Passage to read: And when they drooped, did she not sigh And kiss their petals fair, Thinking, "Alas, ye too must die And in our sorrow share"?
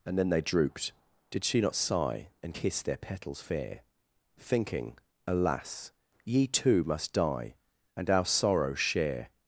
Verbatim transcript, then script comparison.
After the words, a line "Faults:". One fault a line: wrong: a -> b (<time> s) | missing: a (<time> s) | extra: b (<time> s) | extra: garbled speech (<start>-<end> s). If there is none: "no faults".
And then they drooped, did she not sigh And kiss their petals fair, Thinking, "Alas, ye too must die And our sorrow share"?
Faults:
wrong: when -> then (0.2 s)
missing: in (8.1 s)